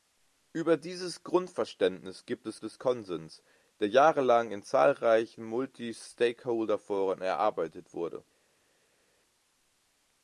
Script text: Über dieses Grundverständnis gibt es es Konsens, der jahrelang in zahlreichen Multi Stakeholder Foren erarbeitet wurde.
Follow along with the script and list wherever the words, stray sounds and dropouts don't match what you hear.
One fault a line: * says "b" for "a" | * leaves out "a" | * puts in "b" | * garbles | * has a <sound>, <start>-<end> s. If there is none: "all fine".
all fine